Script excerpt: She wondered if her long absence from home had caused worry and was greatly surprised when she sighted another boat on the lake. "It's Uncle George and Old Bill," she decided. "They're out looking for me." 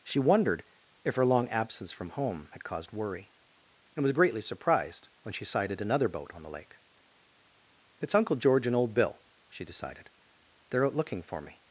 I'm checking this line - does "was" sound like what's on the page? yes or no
yes